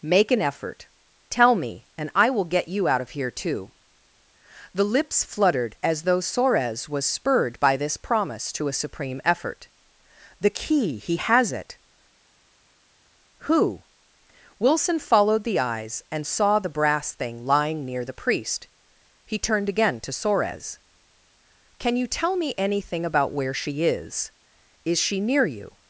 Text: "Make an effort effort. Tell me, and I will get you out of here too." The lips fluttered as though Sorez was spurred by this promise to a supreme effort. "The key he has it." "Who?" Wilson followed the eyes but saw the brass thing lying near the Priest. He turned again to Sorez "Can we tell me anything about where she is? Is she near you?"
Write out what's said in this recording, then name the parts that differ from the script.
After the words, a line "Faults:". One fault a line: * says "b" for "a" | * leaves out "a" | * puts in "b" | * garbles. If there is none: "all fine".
"Make an effort. Tell me, and I will get you out of here too." The lips fluttered as though Sorez was spurred by this promise to a supreme effort. "The key he has it." "Who?" Wilson followed the eyes and saw the brass thing lying near the Priest. He turned again to Sorez "Can you tell me anything about where she is? Is she near you?"
Faults:
* leaves out "effort"
* says "and" for "but"
* says "you" for "we"